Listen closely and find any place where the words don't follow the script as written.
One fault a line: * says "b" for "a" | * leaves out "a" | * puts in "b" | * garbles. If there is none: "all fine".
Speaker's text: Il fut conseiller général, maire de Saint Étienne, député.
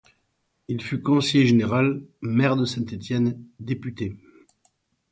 all fine